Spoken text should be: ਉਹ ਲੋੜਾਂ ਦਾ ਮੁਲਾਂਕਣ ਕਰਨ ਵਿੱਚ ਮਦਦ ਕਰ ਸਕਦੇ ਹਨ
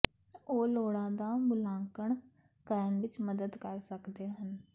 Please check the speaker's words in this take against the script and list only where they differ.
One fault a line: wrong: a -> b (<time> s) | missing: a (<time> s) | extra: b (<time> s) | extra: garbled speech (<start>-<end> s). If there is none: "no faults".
no faults